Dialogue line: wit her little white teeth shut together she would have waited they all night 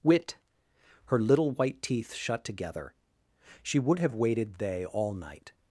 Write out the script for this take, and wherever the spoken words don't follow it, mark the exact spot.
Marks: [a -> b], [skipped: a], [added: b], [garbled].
wit her little white teeth shut together she would have waited they all night